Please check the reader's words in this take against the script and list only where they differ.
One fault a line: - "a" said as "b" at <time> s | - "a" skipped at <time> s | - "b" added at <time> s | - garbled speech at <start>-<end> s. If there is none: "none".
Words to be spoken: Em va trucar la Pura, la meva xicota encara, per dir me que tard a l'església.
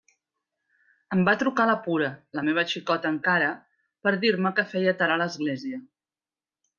- "feia" added at 4.7 s